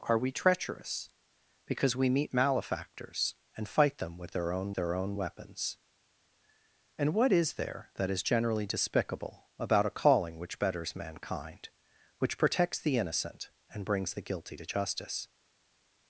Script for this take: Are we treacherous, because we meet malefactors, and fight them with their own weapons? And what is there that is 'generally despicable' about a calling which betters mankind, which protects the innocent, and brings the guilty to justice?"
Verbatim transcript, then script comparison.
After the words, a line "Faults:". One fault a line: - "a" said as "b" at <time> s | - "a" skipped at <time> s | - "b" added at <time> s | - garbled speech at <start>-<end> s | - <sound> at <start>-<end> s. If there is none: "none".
Are we treacherous, because we meet malefactors, and fight them with their own their own weapons? And what is there that is 'generally despicable' about a calling which betters mankind, which protects the innocent, and brings the guilty to justice?"
Faults:
- "their own" added at 4.7 s